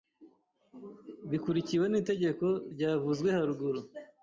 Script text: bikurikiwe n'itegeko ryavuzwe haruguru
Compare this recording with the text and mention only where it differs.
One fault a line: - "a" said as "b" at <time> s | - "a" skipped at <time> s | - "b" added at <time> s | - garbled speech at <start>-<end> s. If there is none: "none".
none